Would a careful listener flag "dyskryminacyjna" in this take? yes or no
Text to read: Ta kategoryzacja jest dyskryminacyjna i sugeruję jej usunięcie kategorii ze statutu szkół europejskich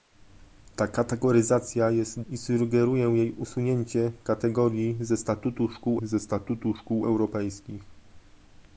yes